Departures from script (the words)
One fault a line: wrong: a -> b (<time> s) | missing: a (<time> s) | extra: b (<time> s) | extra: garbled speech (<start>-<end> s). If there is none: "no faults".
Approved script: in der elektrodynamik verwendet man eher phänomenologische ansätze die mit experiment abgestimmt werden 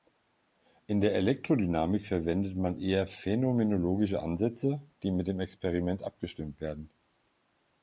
extra: dem (5.3 s)